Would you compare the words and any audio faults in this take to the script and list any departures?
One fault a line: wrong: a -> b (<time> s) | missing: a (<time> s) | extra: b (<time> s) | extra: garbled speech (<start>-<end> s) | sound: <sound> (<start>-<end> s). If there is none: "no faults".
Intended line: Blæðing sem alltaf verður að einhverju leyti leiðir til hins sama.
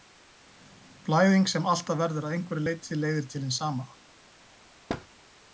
sound: thud (4.9-5.1 s)